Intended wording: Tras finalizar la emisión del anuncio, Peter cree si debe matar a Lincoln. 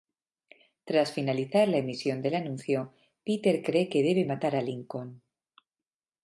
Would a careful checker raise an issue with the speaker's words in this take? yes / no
yes